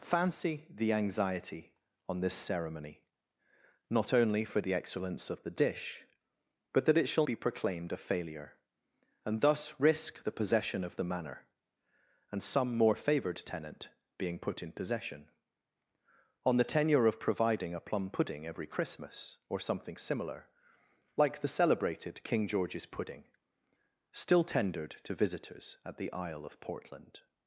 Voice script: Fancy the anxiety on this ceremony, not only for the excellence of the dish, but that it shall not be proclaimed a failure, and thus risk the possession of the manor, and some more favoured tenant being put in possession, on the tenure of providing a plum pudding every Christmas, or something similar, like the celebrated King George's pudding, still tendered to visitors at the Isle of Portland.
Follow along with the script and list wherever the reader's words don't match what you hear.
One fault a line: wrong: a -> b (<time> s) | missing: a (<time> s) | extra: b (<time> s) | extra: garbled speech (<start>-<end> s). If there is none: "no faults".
missing: not (7.3 s)